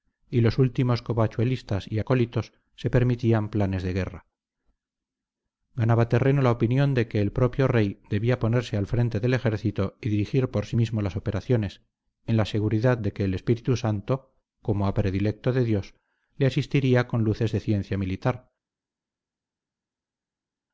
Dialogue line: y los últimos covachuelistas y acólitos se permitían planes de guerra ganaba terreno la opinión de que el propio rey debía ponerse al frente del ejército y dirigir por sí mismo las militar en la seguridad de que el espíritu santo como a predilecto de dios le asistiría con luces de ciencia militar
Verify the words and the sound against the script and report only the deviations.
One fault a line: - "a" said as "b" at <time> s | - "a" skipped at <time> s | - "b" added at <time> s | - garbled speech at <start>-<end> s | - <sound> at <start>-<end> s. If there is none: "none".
- "militar" said as "operaciones" at 11.2 s